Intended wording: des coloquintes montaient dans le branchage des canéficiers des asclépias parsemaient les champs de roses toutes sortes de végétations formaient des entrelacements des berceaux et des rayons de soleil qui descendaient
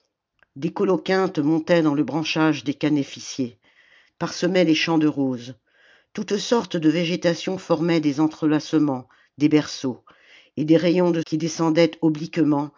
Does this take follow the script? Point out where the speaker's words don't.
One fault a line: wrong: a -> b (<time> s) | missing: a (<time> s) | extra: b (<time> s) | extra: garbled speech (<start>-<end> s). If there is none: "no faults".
missing: des asclépias (3.6 s)
missing: soleil (11.2 s)